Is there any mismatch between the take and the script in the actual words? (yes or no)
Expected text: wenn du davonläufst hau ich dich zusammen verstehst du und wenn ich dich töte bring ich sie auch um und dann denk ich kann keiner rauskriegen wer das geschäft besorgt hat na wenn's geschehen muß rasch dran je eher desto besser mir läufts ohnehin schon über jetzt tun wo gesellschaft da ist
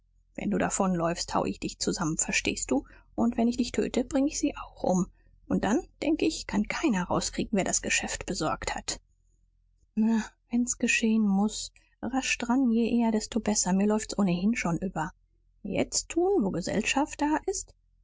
no